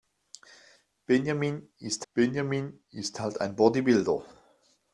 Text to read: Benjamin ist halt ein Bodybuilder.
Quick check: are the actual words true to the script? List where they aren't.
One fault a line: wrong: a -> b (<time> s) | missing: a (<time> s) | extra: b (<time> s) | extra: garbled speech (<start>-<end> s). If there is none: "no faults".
extra: benjamin ist (2.1 s)